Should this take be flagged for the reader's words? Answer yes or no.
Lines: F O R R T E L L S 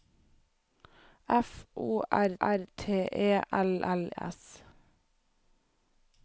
no